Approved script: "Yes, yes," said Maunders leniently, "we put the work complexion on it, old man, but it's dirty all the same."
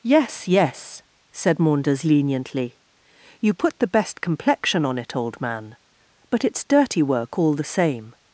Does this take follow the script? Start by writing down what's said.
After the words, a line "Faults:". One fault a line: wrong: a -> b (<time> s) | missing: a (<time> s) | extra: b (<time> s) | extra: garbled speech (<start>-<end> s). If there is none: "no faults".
"Yes, yes," said Maunders leniently, "you put the best complexion on it, old man, but it's dirty work all the same."
Faults:
wrong: we -> you (3.4 s)
wrong: work -> best (3.9 s)
extra: work (7.0 s)